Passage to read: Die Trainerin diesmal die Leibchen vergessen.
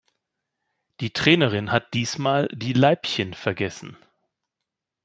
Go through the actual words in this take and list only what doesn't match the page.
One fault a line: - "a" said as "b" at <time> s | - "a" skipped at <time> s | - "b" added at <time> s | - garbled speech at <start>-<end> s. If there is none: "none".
- "hat" added at 1.7 s